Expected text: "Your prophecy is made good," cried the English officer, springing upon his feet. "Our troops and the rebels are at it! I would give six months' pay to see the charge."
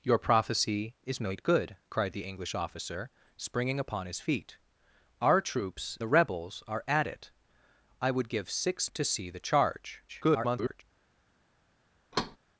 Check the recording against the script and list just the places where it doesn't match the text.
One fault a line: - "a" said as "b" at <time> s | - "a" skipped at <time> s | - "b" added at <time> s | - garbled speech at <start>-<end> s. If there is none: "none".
- "and" skipped at 6.0 s
- "months pay" skipped at 8.9 s
- garbled speech at 10.1-10.8 s